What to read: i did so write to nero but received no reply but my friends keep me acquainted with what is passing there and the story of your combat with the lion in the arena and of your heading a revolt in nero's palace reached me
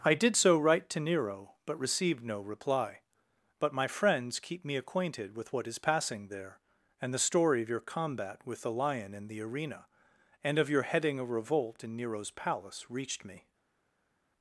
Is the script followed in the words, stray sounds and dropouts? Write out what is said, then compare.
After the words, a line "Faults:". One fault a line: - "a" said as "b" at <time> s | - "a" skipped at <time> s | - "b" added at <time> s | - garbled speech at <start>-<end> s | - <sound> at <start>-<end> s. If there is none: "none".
i did so write to nero but received no reply but my friends keep me acquainted with what is passing there and the story of your combat with the lion in the arena and of your heading a revolt in nero's palace reached me
Faults:
none